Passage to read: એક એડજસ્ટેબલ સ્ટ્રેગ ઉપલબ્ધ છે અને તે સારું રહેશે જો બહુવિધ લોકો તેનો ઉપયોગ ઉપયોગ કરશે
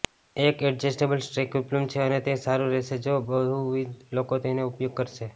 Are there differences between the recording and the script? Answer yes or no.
yes